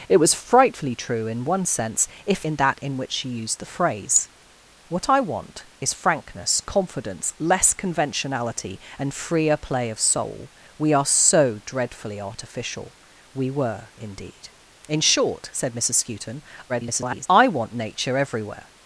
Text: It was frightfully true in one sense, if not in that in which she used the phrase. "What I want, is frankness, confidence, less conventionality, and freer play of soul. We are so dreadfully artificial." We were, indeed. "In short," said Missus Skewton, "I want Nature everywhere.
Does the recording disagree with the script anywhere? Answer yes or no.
yes